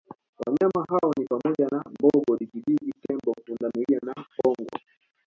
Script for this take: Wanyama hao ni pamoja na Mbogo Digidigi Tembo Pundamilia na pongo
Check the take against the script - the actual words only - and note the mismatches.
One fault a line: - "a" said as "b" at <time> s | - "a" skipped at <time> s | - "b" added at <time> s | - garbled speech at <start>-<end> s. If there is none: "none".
none